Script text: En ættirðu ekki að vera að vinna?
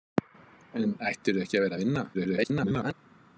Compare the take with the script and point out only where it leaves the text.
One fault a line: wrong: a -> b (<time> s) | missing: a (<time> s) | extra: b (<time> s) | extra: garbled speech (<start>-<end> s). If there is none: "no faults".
extra: garbled speech (2.1-2.9 s)